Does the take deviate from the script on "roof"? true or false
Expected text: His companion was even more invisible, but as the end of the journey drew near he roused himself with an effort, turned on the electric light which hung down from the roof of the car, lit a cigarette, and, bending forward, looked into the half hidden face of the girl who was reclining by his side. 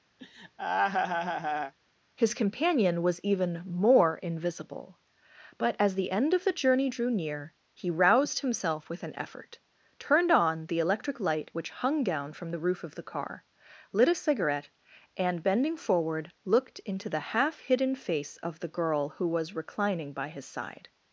false